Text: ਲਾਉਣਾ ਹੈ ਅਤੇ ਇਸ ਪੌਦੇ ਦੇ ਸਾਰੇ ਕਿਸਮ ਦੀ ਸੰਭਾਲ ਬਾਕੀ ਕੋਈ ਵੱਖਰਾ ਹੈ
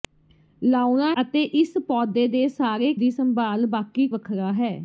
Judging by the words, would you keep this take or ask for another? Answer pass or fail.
fail